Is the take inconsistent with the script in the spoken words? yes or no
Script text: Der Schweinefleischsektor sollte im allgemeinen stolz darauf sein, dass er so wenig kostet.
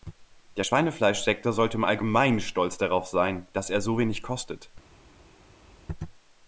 no